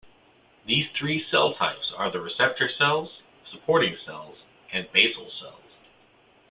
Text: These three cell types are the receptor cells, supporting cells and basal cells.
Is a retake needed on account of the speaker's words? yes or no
no